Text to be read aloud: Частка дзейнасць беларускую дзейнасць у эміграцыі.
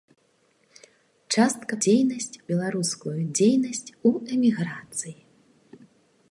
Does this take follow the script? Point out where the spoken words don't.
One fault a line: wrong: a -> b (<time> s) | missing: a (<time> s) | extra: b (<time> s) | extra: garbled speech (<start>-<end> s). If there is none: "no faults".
no faults